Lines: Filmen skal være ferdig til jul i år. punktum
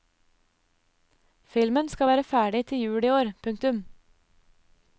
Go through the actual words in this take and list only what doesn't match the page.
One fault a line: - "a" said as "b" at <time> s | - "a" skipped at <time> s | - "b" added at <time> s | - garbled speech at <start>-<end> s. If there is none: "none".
none